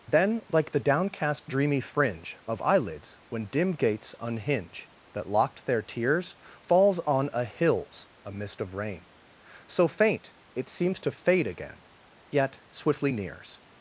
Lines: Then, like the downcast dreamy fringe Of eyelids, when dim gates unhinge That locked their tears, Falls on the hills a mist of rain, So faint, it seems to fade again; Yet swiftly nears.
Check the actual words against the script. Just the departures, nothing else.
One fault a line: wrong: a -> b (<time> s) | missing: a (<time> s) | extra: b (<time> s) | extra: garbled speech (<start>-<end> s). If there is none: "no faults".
wrong: the -> a (7.3 s)